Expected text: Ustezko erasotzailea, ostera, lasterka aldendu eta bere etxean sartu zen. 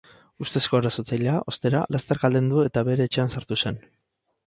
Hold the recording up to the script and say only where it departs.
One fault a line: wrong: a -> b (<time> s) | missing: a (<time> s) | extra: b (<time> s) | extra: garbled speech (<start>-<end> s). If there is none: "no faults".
no faults